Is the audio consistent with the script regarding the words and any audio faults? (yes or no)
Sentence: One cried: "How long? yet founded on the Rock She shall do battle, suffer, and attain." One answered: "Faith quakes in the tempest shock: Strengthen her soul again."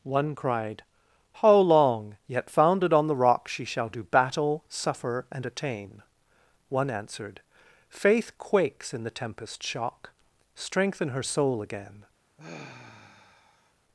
no